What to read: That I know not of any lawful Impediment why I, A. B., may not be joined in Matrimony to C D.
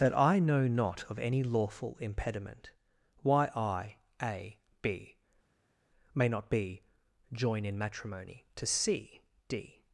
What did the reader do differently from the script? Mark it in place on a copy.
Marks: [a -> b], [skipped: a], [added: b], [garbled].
That I know not of any lawful Impediment why I, A. B., may not be [joined -> join] in Matrimony to C D.